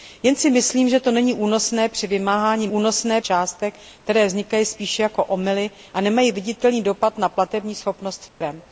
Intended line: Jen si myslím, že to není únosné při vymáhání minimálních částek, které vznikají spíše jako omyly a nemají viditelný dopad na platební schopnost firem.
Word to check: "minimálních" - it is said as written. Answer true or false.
false